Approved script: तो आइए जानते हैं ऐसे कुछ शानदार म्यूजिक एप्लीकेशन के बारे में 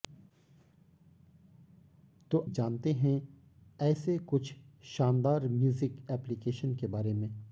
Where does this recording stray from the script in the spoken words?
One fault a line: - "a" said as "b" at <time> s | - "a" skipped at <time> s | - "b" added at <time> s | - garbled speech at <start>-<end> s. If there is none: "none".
- "आइए" skipped at 2.5 s